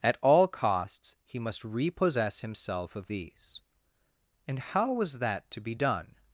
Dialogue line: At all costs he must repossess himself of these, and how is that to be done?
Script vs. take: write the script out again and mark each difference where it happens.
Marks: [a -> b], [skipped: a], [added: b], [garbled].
At all costs he must repossess himself of these, and how [is -> was] that to be done?